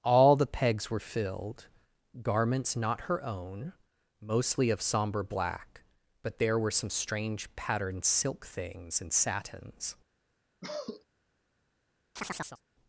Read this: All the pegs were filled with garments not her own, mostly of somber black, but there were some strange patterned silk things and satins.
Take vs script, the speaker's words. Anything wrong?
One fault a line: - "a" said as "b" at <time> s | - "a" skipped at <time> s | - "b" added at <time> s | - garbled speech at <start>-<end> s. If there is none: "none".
- "with" skipped at 1.7 s